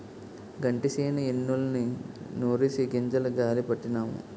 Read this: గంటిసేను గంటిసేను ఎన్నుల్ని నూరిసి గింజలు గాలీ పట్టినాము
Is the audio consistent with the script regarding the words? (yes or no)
no